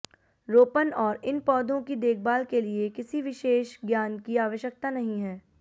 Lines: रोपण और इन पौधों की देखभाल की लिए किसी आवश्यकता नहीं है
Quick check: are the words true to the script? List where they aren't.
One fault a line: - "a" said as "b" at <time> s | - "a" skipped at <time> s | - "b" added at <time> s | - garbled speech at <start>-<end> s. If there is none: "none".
- "की" said as "के" at 2.5 s
- "विशेष ज्ञान की" added at 3.2 s